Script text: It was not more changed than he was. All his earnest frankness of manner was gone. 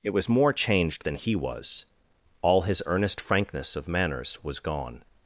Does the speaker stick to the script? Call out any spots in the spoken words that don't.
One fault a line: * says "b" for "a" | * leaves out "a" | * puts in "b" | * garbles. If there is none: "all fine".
* leaves out "not"
* says "manners" for "manner"